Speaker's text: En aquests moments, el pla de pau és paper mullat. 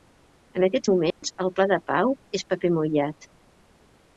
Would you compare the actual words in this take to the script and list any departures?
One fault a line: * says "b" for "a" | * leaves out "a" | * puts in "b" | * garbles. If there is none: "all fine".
all fine